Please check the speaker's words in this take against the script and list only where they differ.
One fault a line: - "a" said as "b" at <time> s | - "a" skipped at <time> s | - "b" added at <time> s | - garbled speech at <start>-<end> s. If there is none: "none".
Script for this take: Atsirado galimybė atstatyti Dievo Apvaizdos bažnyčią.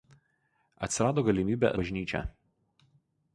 - "atstatyti Dievo Apvaizdos" skipped at 1.7 s